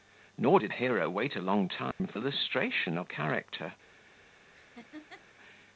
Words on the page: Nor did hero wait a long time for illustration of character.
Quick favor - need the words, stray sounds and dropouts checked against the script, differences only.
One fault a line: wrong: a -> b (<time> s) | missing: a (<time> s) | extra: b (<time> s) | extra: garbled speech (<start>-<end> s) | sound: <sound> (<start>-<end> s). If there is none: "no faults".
sound: dropout (1.9-2.0 s)
sound: laugh (4.5-5.3 s)